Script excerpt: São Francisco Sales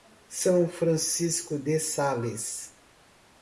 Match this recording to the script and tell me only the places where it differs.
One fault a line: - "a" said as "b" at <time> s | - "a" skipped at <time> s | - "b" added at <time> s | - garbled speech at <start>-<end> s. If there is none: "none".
- "de" added at 1.6 s